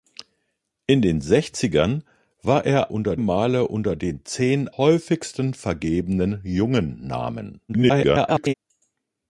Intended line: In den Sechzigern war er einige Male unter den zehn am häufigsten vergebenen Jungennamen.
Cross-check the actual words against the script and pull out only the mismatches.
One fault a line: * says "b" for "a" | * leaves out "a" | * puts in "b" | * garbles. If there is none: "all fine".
* says "unter" for "einige"
* leaves out "am"
* garbles